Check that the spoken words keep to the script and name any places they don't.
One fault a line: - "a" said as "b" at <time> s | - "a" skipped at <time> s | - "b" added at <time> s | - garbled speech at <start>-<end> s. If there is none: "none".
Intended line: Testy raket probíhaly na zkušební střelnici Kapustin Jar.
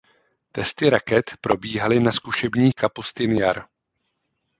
- "střelnici" skipped at 2.7 s